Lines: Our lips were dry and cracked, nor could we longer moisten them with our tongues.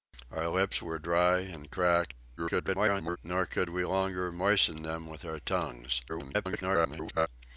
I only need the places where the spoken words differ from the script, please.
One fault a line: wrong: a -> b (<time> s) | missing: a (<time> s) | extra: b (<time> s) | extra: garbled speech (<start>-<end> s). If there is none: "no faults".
extra: garbled speech (2.4-3.2 s)
extra: garbled speech (6.1-7.3 s)